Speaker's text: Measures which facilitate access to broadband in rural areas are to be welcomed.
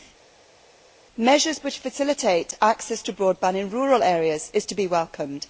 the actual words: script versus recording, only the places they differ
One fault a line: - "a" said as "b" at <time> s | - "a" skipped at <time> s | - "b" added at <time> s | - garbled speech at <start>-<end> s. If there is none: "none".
none